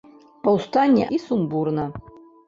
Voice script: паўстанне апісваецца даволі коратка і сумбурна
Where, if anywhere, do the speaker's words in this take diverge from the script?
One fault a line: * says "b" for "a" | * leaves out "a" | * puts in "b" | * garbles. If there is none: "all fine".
* leaves out "апісваецца даволі коратка"